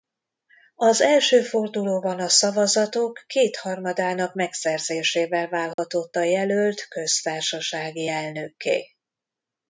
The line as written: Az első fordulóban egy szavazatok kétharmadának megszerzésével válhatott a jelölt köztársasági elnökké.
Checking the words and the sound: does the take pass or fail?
fail